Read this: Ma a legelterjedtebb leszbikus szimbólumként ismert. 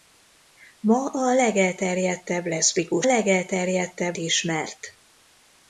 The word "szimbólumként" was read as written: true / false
false